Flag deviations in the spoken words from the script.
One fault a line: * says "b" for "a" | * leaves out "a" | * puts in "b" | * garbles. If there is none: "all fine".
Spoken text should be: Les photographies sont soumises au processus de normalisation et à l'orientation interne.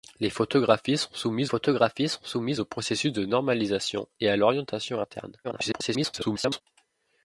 * puts in "photographies sont soumises"
* garbles